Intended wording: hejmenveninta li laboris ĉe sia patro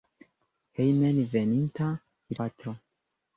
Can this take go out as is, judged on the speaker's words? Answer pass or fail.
fail